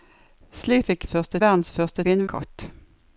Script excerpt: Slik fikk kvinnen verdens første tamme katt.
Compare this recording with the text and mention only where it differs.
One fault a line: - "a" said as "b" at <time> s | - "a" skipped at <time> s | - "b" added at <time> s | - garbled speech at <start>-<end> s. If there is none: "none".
- "kvinnen" said as "første" at 1.1 s
- "tamme" said as "kvinnen" at 2.0 s